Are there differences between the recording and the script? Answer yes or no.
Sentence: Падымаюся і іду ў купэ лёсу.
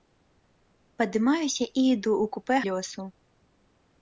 no